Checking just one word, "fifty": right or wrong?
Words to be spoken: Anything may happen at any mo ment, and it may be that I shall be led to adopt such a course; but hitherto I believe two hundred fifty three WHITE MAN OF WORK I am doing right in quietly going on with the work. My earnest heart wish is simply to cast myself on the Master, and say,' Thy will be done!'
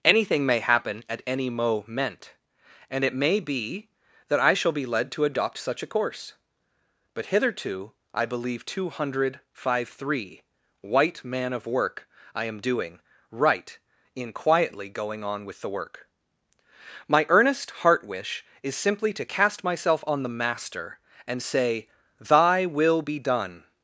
wrong